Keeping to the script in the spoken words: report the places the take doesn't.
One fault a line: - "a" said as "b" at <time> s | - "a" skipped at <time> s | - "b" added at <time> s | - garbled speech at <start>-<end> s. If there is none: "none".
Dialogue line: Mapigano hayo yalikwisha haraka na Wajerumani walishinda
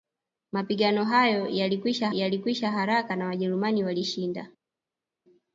- "yalikwisha" added at 2.1 s